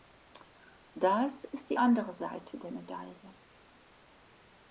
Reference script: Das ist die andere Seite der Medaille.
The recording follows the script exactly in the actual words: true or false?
true